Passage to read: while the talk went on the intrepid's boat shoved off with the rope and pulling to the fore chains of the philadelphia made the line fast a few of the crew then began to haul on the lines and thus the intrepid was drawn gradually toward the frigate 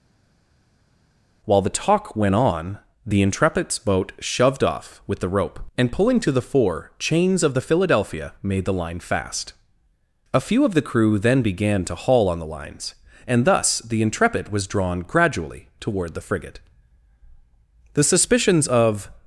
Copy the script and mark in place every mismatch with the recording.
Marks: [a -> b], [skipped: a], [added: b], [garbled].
while the talk went on the intrepid's boat shoved off with the rope and pulling to the fore chains of the philadelphia made the line fast a few of the crew then began to haul on the lines and thus the intrepid was drawn gradually toward the frigate [added: the suspicions of]